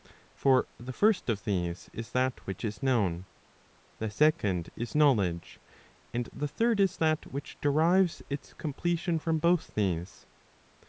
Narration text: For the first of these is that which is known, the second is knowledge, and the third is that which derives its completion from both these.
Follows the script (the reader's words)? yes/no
yes